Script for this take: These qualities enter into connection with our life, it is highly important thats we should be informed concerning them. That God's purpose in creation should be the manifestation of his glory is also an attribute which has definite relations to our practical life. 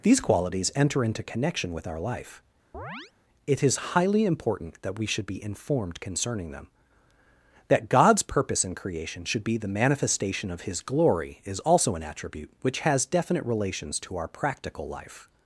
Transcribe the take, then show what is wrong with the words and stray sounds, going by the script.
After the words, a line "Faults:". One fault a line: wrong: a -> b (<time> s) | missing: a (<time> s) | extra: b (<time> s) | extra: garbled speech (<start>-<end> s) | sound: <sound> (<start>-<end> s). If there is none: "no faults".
These qualities enter into connection with our life, it is highly important that we should be informed concerning them. That God's purpose in creation should be the manifestation of his glory is also an attribute which has definite relations to our practical life.
Faults:
sound: chirp (2.7-3.1 s)
wrong: thats -> that (4.8 s)